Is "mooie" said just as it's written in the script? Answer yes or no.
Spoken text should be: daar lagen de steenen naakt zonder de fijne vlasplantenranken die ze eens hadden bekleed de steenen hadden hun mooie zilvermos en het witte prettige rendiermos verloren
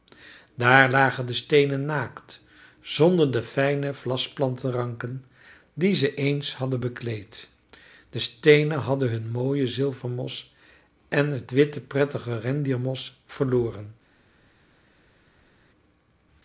yes